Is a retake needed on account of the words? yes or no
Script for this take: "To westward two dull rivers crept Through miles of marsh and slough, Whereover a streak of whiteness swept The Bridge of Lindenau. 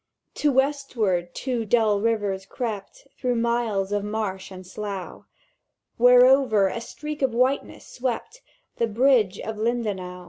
no